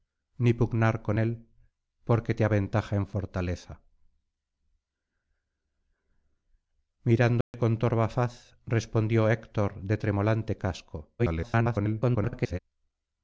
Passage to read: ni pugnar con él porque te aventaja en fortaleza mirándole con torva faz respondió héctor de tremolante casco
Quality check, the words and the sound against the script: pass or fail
fail